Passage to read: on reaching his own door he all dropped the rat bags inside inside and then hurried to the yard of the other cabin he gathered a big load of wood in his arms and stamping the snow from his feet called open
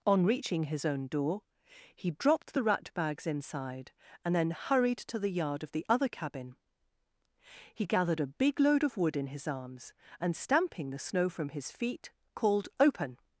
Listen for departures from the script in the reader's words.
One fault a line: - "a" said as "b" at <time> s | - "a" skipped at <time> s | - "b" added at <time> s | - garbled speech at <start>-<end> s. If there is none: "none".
- "all" skipped at 2.1 s
- "inside" skipped at 3.9 s